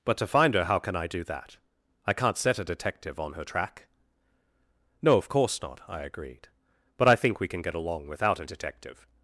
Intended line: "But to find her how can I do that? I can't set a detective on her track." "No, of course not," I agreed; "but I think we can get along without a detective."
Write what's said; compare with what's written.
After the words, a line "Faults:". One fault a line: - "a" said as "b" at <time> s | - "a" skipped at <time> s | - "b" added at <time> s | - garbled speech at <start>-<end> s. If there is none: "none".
"But to find her how can I do that? I can't set a detective on her track." "No, of course not," I agreed; "but I think we can get along without a detective."
Faults:
none